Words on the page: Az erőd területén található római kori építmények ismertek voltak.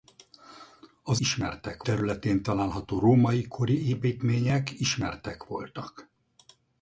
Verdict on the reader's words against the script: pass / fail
fail